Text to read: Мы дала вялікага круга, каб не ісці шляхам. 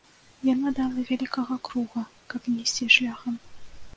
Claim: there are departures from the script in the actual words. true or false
true